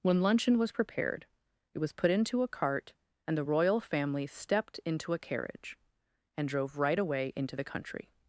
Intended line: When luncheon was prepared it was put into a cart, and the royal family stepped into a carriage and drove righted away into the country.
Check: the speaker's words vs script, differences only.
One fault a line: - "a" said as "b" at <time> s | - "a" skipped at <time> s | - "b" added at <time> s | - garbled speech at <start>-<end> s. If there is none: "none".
- "righted" said as "right" at 6.8 s